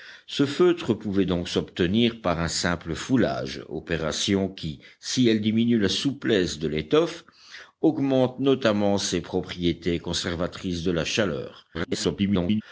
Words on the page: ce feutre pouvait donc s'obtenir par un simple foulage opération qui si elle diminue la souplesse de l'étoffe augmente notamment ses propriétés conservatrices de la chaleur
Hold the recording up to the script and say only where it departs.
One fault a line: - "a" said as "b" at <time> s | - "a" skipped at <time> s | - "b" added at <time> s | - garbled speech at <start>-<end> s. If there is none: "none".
- garbled speech at 11.7-12.6 s